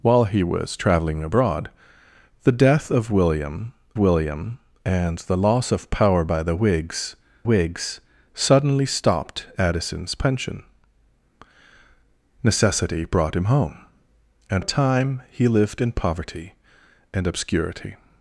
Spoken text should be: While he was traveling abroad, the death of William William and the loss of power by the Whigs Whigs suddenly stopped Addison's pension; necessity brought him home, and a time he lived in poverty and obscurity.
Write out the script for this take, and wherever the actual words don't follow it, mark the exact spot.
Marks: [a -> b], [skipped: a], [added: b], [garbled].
While he was traveling abroad, the death of William William and the loss of power by the Whigs Whigs suddenly stopped Addison's pension; necessity brought him home, and a time he lived in poverty and obscurity.